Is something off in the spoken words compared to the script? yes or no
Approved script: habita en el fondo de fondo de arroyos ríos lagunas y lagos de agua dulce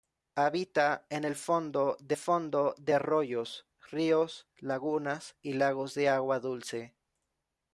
no